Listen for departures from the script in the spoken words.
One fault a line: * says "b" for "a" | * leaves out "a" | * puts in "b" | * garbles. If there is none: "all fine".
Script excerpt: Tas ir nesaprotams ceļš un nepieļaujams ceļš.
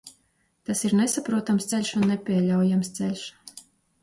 all fine